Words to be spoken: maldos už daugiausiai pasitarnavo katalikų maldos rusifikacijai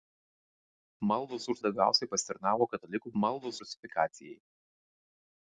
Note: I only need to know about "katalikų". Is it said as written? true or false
true